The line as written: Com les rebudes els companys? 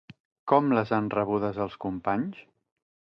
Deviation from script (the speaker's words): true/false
true